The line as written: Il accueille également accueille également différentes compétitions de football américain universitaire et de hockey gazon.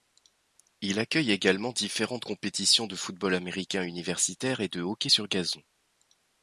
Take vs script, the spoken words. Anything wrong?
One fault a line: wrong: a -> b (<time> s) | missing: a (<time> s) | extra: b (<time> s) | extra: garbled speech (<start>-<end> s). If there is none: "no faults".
missing: accueille également (1.7 s)
extra: sur (5.1 s)